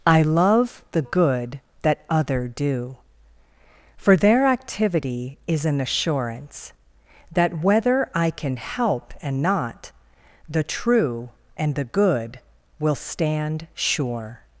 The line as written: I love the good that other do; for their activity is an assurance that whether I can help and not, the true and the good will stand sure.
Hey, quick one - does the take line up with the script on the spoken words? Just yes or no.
yes